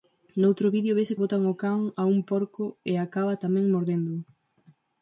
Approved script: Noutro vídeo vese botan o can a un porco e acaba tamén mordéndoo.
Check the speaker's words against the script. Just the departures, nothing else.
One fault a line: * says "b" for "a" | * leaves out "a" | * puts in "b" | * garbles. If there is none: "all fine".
all fine